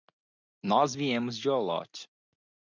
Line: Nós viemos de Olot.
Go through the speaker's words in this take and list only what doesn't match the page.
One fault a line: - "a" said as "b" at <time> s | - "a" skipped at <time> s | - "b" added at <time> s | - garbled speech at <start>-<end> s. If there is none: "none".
none